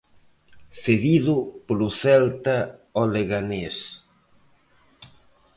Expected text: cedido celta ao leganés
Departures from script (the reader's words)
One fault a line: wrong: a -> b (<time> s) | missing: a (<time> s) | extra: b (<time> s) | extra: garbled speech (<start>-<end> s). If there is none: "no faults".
extra: polo (1.7 s)